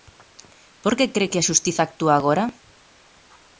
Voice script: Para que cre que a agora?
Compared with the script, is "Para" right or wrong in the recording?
wrong